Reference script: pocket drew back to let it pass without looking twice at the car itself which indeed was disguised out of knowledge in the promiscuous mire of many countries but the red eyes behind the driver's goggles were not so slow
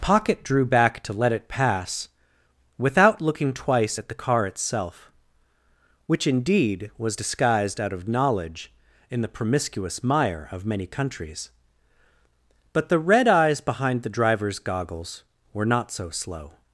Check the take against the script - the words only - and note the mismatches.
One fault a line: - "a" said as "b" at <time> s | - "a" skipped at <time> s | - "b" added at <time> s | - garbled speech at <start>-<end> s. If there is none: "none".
none